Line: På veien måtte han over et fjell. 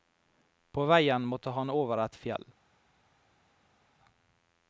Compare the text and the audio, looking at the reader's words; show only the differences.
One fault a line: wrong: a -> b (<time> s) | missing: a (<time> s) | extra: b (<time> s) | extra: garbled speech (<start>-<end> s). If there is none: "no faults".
no faults